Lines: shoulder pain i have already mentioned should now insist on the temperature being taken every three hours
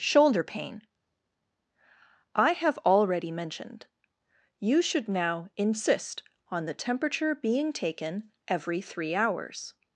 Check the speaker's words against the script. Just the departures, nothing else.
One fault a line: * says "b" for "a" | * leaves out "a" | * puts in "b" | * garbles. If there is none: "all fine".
* puts in "you"